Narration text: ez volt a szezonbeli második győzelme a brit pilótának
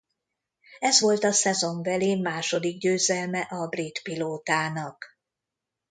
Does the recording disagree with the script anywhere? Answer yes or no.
no